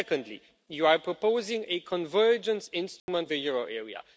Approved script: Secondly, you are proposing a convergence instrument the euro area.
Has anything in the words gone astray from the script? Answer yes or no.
no